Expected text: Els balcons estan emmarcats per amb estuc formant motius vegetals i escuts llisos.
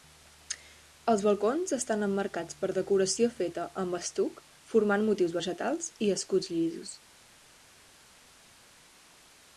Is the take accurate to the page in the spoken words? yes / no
no